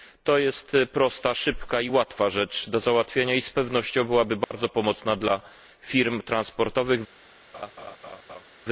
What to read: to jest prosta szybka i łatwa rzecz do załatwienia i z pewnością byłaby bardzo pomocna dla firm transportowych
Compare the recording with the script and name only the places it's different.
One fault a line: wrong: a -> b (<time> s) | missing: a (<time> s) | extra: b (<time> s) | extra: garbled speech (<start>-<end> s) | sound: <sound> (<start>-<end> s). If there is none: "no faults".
sound: dropout (4.4-4.5 s)
sound: laugh (7.5-8.5 s)